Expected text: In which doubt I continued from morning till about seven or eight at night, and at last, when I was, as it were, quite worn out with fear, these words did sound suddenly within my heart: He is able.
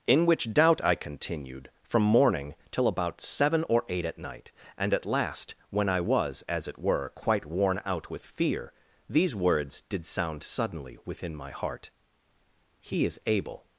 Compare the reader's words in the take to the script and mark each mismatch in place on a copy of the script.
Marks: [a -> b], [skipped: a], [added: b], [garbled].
In which doubt I continued from morning till about seven or eight at night, and at last, when I was, as it were, quite worn out with fear, these words did sound suddenly within my heart: He is able.